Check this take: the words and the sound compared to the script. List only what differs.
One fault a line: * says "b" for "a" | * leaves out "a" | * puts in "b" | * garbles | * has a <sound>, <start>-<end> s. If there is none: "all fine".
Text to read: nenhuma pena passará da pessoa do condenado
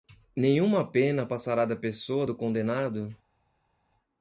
all fine